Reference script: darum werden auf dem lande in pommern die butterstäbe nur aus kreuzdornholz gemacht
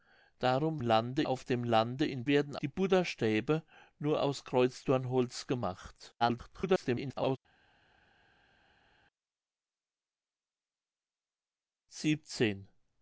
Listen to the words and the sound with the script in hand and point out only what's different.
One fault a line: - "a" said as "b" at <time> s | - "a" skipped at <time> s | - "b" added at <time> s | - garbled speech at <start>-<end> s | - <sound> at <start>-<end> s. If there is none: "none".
- "werden" said as "lande" at 0.8 s
- "pommern" said as "werden" at 2.3 s
- garbled speech at 6.2-7.4 s